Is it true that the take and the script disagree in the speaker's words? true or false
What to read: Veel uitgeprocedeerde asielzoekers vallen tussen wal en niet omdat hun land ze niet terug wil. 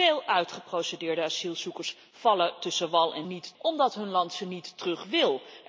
false